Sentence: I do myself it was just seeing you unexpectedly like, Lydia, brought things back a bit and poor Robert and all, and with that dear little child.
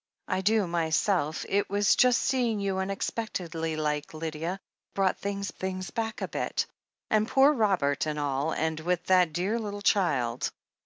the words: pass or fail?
fail